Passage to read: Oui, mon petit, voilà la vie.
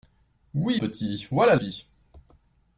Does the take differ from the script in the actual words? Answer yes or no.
yes